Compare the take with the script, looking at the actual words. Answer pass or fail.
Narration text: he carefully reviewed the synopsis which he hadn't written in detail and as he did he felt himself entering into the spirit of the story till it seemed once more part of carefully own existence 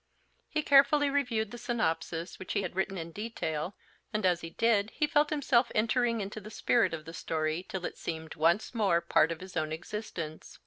fail